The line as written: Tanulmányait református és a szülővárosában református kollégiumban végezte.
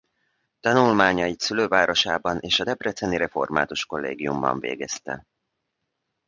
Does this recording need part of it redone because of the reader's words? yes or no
yes